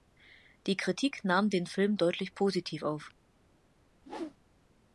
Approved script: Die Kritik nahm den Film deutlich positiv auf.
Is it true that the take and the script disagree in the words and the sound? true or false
true